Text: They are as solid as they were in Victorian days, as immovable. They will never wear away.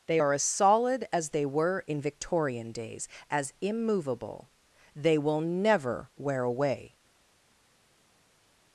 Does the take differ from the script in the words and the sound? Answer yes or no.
no